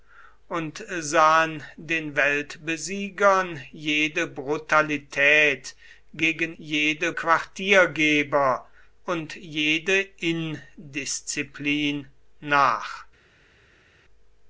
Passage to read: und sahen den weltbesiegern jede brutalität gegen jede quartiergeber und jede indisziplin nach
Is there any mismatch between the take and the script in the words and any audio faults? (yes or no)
no